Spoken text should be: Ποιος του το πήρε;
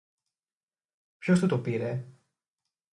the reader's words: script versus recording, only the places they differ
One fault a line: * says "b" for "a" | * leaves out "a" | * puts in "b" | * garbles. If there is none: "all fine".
all fine